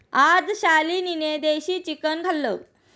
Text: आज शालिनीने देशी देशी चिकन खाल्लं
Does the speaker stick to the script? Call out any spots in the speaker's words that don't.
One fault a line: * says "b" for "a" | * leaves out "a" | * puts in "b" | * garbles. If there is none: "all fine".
* leaves out "देशी"